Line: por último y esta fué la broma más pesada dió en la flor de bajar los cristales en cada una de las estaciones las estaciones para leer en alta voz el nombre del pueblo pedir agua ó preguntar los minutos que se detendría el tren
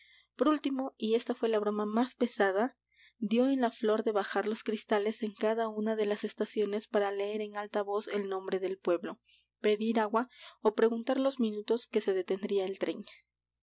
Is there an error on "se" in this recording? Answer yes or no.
no